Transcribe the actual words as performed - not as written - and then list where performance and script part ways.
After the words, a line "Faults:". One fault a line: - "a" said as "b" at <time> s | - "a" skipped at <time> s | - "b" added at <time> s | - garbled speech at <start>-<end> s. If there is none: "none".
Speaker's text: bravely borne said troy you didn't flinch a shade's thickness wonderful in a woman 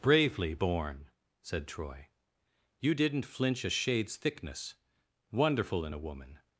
bravely borne said troy you didn't flinch a shade's thickness wonderful in a woman
Faults:
none